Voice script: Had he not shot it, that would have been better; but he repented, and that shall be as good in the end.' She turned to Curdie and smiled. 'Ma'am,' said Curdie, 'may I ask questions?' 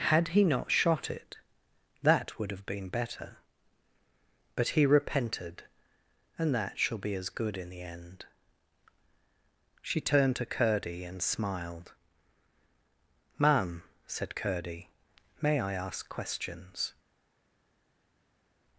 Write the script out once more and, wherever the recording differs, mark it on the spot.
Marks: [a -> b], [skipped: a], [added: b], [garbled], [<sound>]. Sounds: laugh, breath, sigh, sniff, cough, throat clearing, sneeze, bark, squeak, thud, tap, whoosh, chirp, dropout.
Had he not shot it, that would have been better; but he repented, and that shall be as good in the end.' She turned to Curdie and smiled. 'Ma'am,' said Curdie, 'may I ask questions?'